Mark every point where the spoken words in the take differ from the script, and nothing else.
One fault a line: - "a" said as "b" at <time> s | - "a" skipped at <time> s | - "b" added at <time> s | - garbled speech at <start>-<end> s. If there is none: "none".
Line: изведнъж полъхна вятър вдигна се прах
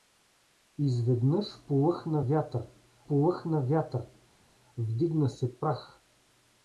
- "полъхна вятър" added at 3.1 s